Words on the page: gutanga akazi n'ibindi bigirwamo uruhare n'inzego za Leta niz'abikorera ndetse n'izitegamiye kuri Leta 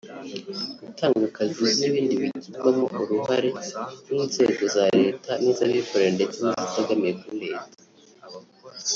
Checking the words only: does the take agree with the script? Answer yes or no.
yes